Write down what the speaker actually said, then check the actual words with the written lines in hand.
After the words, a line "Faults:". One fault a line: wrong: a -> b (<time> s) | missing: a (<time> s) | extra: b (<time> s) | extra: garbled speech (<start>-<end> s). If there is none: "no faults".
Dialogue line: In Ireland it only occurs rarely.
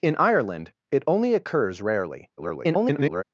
In Ireland it only occurs rarely. [garbled]
Faults:
extra: garbled speech (2.4-3.2 s)